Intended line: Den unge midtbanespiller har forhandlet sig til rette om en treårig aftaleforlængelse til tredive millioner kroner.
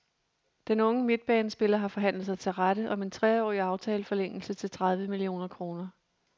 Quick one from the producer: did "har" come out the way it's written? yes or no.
yes